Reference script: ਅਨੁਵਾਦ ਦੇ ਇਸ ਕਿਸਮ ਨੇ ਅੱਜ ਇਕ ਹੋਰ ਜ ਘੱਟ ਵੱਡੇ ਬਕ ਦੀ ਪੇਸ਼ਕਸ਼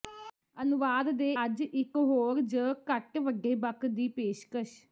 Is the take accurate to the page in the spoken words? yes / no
no